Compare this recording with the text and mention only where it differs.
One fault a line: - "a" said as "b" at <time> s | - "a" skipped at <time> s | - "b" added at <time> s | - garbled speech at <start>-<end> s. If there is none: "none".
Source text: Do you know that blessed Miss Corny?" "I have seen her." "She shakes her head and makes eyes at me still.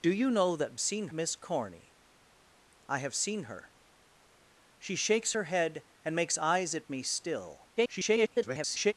- "blessed" said as "seen" at 0.8 s
- garbled speech at 7.8-8.9 s